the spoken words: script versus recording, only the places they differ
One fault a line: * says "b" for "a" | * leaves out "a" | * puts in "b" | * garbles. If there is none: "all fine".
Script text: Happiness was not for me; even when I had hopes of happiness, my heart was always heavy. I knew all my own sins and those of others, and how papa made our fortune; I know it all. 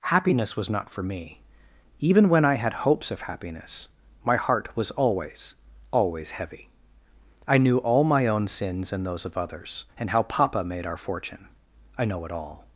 * puts in "always"